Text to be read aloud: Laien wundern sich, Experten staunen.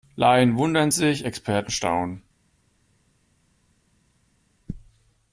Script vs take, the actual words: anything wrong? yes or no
no